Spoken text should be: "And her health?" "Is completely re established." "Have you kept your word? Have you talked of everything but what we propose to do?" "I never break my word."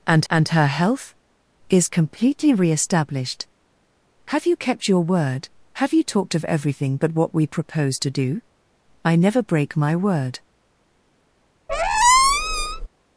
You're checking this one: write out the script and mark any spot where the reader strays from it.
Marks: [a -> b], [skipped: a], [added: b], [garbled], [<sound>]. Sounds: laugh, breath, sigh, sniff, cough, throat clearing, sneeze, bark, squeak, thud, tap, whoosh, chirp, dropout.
"And [added: and] her health?" "Is completely re established." "Have you kept your word? Have you talked of everything but what we propose to do?" "I never break my word." [squeak]